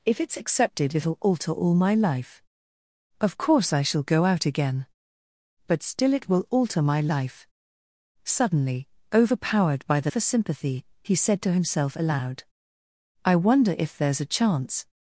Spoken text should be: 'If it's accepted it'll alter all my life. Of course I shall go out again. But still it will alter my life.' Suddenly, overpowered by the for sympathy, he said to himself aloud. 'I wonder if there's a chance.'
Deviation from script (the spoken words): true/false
false